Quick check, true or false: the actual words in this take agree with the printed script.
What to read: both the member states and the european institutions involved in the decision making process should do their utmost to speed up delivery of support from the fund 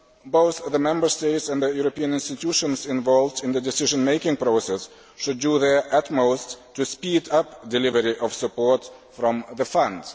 true